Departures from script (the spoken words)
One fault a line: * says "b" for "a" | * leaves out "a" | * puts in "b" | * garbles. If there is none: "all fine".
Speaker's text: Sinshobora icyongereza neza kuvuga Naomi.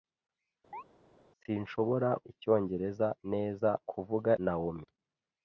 all fine